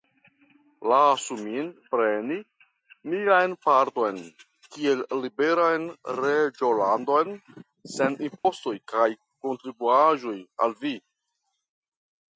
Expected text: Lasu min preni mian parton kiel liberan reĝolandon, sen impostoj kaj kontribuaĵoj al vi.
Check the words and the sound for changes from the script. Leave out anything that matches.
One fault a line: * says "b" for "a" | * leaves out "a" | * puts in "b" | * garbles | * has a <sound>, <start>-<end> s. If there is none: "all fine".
* has a dropout, 8.4-8.4 s